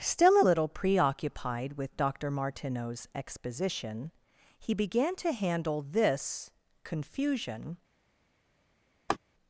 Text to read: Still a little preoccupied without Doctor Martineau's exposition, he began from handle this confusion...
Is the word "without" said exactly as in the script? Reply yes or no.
no